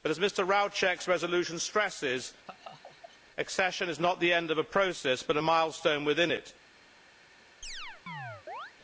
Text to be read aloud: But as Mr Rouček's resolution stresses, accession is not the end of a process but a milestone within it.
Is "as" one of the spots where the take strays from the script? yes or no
no